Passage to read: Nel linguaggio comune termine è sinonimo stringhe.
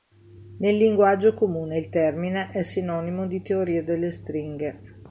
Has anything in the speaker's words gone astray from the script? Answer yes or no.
yes